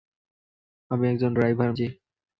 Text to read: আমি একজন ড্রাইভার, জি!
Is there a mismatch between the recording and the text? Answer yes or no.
no